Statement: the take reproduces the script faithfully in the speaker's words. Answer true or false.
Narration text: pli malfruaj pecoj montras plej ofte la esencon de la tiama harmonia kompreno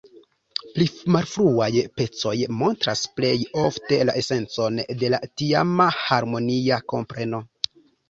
true